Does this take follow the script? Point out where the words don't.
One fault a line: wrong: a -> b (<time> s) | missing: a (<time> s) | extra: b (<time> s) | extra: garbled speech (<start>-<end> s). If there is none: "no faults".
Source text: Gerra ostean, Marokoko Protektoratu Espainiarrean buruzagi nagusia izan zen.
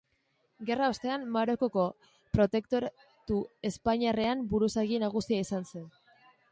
no faults